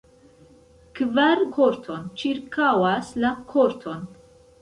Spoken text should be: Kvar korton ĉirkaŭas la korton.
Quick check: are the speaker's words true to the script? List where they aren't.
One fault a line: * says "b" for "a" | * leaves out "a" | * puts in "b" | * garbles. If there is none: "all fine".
all fine